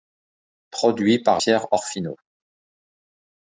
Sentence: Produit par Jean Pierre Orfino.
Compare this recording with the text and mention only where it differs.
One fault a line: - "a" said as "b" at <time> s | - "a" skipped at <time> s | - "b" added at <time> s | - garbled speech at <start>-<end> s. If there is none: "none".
- "Jean" skipped at 1.4 s